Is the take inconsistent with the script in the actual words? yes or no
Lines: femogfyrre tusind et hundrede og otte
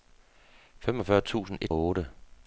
yes